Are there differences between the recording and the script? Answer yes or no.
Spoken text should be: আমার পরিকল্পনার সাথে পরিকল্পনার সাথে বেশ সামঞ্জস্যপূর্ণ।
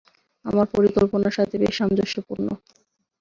yes